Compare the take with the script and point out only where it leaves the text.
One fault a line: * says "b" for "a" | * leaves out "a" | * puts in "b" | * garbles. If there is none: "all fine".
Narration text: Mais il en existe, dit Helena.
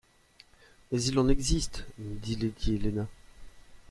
* puts in "lady"